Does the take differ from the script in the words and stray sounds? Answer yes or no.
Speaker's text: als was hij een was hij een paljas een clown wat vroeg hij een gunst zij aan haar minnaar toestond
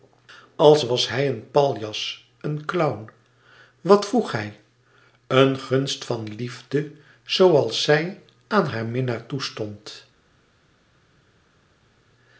yes